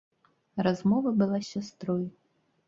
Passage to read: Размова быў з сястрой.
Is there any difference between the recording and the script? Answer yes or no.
yes